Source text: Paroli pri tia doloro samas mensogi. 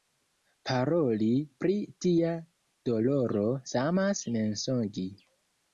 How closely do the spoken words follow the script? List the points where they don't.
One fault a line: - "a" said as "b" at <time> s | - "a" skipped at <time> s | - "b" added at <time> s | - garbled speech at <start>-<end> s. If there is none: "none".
none